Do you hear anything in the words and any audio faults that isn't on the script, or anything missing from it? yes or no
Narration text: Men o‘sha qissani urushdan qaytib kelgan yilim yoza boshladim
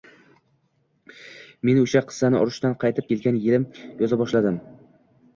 no